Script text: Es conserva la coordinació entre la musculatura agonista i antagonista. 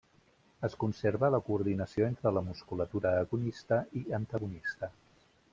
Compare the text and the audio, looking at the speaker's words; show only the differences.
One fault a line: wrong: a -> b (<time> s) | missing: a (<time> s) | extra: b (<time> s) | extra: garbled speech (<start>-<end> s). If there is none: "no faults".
no faults